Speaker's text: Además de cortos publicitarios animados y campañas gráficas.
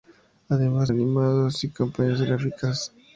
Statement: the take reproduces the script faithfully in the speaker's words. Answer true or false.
false